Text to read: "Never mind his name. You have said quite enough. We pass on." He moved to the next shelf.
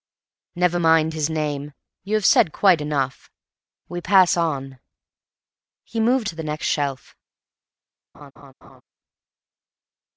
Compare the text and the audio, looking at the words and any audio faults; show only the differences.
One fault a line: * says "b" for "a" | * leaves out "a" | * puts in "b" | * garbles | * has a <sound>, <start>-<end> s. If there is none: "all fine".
* has a laugh, 8.1-8.8 s